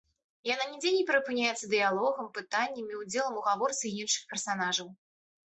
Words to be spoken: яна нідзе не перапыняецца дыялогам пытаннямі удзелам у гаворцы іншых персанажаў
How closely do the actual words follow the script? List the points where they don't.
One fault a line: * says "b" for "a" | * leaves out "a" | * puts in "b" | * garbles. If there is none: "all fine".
all fine